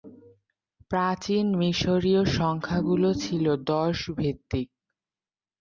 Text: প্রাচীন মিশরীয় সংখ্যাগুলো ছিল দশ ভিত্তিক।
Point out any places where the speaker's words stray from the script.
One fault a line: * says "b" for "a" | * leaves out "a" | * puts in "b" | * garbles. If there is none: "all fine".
all fine